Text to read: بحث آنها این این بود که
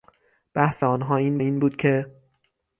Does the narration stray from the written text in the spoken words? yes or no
no